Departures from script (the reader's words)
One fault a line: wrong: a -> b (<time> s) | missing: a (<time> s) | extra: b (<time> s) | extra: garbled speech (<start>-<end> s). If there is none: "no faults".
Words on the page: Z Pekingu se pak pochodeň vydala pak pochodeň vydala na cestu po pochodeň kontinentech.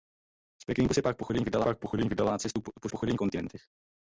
no faults